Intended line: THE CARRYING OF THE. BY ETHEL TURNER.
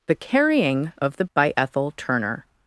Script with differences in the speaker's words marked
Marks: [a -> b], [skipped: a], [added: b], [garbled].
THE CARRYING OF THE. BY ETHEL TURNER.